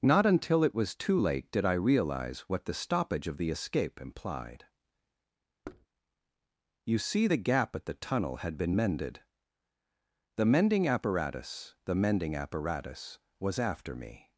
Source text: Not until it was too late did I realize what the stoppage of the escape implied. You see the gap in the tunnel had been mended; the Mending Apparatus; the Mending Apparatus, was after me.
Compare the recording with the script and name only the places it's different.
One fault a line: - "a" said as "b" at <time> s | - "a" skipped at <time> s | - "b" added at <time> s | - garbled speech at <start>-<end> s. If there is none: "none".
- "in" said as "at" at 7.7 s